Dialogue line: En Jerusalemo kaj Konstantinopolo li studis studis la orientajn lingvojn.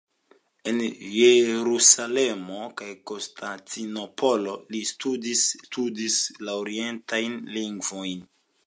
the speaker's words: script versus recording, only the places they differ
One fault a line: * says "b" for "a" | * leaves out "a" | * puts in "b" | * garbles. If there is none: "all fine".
all fine